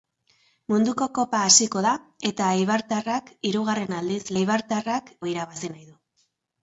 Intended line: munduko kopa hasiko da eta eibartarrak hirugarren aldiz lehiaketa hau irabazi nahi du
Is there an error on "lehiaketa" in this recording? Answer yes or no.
yes